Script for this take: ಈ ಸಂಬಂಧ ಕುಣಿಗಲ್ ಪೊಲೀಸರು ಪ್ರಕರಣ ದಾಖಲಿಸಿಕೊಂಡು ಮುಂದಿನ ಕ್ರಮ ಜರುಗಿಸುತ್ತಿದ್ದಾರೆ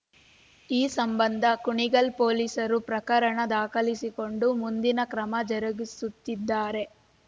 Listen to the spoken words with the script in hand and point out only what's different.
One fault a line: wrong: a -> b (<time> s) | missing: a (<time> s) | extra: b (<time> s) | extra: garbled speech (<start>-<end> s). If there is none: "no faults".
no faults